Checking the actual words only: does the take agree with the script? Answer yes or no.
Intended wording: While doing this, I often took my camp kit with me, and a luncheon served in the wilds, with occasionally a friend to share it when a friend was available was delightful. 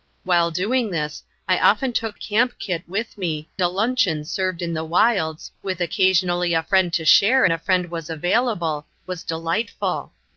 no